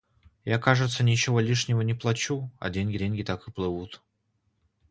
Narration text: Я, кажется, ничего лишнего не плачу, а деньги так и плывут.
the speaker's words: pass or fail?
fail